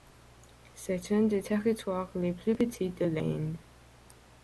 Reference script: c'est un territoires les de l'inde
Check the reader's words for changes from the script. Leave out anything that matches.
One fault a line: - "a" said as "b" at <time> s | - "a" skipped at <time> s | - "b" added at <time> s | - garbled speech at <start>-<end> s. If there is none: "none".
- "des" added at 1.2 s
- "plus petits" added at 2.3 s